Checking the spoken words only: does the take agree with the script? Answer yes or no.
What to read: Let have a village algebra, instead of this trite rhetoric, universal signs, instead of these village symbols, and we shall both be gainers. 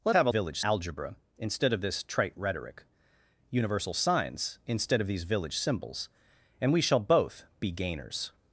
yes